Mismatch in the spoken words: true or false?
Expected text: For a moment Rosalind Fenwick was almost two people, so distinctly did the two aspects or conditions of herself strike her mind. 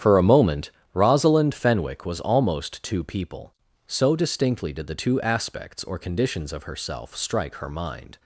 false